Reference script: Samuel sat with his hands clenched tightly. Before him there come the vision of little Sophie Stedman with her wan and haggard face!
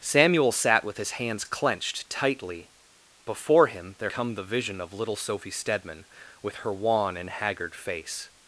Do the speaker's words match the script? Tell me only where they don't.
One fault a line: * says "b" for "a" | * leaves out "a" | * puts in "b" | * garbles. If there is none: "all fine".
all fine